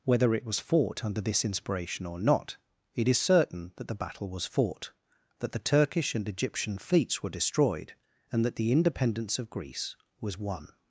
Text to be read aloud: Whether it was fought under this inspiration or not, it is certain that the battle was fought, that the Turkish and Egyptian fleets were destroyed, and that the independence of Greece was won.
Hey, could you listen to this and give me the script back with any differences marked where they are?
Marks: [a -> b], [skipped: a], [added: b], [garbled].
Whether it was fought under this inspiration or not, it is certain that the battle was fought, that the Turkish and Egyptian fleets were destroyed, and that the independence of Greece was won.